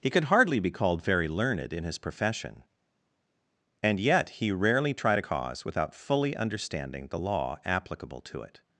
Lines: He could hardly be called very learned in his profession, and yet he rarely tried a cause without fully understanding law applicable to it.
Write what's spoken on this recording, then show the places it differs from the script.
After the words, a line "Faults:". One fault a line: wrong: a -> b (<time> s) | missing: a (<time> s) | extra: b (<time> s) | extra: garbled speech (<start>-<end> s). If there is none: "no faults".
He could hardly be called very learned in his profession, and yet he rarely tried a cause without fully understanding the law applicable to it.
Faults:
extra: the (7.1 s)